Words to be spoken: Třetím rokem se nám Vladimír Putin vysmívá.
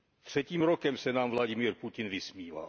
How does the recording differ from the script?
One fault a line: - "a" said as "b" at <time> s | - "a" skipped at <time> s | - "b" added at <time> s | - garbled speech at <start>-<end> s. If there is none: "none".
none